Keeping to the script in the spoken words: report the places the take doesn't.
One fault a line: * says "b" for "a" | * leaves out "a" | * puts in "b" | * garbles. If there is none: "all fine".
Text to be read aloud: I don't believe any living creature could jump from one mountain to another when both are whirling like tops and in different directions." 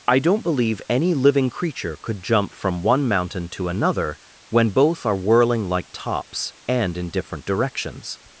all fine